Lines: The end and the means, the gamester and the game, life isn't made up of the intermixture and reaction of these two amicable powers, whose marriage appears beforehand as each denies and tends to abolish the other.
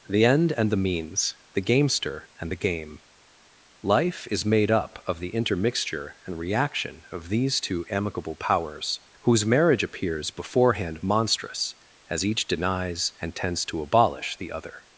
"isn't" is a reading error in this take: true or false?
true